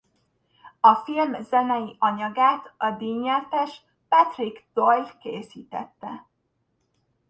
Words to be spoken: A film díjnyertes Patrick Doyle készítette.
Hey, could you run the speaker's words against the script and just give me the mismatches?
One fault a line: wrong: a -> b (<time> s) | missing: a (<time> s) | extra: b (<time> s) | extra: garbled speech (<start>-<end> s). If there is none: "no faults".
extra: zenei anyagát a (1.4 s)